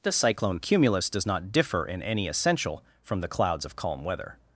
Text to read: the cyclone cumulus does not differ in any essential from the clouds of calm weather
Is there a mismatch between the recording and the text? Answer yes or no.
no